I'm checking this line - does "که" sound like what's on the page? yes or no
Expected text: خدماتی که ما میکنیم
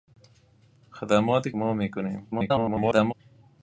no